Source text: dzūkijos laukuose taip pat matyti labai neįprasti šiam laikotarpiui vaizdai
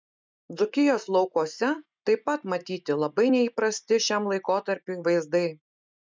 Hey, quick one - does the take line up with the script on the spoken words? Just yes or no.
yes